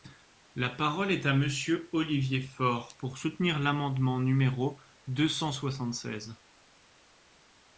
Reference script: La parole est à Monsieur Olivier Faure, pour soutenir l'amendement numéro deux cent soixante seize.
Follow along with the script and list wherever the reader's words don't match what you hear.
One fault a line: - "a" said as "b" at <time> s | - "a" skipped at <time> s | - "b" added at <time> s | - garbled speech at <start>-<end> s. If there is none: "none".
none